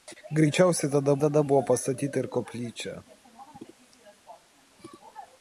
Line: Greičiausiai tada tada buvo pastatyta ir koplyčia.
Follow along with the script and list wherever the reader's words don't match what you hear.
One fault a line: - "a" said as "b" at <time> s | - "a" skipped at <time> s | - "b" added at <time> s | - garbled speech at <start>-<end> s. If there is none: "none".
none